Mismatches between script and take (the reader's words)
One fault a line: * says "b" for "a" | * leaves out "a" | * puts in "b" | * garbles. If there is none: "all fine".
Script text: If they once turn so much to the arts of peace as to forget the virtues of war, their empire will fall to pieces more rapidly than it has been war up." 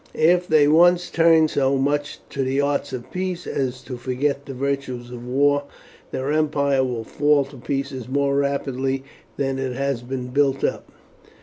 * says "built" for "war"